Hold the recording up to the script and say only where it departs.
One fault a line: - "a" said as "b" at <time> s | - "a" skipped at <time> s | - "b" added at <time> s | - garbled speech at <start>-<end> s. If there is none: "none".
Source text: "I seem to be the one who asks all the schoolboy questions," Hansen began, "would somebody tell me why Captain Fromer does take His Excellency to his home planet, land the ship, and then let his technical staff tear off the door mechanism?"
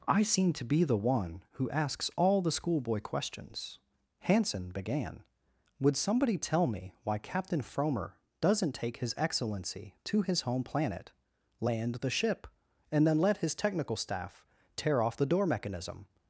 - "does" said as "doesn't" at 8.4 s